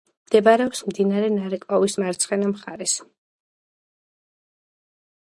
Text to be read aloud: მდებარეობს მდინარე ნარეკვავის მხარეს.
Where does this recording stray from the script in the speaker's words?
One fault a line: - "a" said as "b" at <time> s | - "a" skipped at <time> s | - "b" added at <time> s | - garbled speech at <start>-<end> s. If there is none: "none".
- "მარცხენა" added at 2.0 s